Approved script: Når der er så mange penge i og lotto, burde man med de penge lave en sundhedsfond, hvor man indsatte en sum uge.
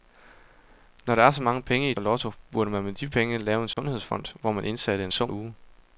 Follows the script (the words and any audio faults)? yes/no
no